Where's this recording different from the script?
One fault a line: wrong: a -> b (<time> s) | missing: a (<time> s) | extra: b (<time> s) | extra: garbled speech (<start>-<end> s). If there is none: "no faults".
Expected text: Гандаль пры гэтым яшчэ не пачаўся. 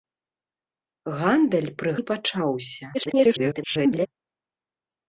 missing: гэтым яшчэ (1.9 s)
extra: garbled speech (2.9-4.1 s)